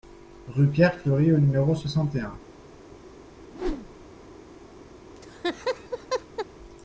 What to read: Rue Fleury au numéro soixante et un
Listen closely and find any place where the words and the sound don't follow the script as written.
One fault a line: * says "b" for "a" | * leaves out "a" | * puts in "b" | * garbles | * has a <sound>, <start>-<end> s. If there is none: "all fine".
* puts in "Pierre"
* has a whoosh, 3.5-4.1 s
* has a laugh, 5.2-6.5 s